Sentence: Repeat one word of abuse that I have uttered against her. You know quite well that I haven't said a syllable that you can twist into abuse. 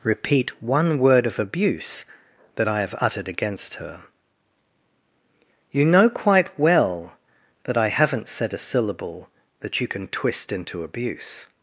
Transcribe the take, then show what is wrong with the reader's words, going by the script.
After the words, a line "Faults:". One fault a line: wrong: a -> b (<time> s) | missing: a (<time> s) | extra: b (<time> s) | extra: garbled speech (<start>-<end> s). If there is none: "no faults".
Repeat one word of abuse that I have uttered against her. You know quite well that I haven't said a syllable that you can twist into abuse.
Faults:
no faults